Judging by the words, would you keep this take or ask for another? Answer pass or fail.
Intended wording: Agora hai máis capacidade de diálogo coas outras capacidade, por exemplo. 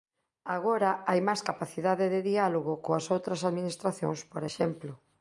fail